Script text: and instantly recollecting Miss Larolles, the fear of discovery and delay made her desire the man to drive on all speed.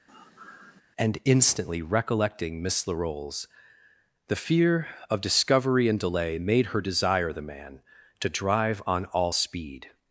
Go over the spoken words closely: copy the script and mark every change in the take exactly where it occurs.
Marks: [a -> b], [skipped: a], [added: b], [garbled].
and instantly recollecting Miss Larolles, the fear of discovery and delay made her desire the man to drive on all speed.